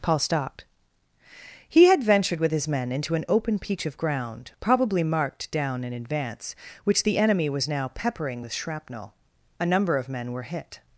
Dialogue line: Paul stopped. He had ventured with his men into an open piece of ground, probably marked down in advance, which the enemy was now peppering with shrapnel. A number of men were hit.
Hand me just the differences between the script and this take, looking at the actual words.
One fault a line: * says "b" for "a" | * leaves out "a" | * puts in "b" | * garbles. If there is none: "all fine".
* says "peach" for "piece"